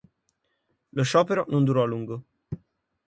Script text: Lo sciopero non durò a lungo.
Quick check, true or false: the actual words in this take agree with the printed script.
true